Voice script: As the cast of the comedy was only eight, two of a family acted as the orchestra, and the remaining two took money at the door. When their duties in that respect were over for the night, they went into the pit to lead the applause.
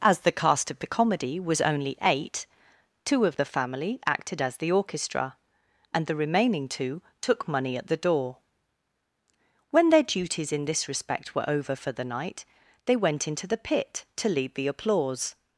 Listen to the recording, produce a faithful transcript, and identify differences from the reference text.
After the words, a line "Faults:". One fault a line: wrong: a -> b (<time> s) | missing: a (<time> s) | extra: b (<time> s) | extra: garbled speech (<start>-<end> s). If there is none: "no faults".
As the cast of the comedy was only eight, two of the family acted as the orchestra, and the remaining two took money at the door. When their duties in this respect were over for the night, they went into the pit to lead the applause.
Faults:
wrong: a -> the (3.3 s)
wrong: that -> this (10.6 s)